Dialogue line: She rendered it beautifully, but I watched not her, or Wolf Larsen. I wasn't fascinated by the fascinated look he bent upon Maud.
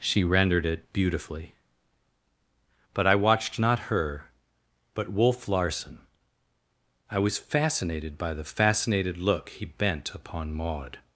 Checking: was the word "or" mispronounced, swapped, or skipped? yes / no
yes